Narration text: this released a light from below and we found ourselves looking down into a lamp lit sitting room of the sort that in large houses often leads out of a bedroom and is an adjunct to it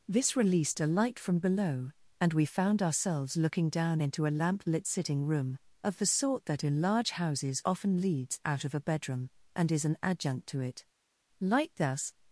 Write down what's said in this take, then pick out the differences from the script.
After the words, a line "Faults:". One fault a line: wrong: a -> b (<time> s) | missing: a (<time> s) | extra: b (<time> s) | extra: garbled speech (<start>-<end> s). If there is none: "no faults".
this released a light from below and we found ourselves looking down into a lamp lit sitting room of the sort that in large houses often leads out of a bedroom and is an adjunct to it light thus
Faults:
extra: light thus (11.4 s)